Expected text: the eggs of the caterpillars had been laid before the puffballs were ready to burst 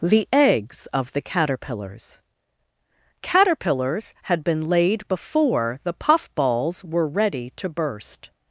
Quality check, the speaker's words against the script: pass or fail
fail